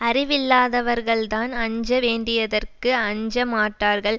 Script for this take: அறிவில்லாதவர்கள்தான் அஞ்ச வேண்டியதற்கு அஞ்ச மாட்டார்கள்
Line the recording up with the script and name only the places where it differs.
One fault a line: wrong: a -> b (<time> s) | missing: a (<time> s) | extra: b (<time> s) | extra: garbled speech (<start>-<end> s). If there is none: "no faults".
no faults